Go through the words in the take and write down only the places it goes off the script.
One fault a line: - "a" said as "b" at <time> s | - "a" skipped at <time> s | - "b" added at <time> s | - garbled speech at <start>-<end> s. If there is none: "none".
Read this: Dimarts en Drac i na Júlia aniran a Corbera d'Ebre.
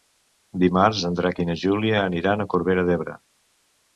none